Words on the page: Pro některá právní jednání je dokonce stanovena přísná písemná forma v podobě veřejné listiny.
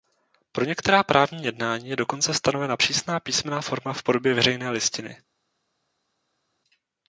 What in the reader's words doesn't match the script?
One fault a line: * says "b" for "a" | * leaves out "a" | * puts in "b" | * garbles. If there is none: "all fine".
all fine